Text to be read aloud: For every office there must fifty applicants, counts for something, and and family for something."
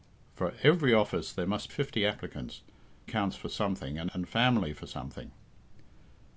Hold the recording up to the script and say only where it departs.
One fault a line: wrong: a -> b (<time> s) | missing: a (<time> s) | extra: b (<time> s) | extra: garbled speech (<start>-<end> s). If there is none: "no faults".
no faults